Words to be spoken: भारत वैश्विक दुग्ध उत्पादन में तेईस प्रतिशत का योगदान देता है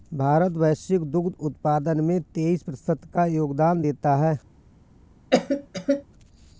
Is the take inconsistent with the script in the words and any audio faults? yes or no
yes